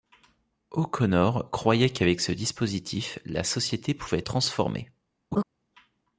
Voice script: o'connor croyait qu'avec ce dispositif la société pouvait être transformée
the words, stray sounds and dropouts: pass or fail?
fail